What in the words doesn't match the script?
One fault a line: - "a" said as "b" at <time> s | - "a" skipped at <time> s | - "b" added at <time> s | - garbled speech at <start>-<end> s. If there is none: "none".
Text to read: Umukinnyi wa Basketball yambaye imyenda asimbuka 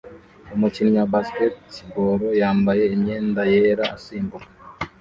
- "yera" added at 3.5 s